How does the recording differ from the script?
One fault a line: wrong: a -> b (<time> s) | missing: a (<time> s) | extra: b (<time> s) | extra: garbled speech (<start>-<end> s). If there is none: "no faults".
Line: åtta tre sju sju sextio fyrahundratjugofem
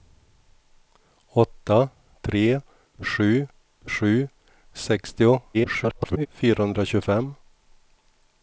extra: garbled speech (5.5-6.3 s)